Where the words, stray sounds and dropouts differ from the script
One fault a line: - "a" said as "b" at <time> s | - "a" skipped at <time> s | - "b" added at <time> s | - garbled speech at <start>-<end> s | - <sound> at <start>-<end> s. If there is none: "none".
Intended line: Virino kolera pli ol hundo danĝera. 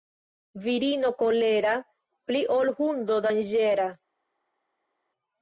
none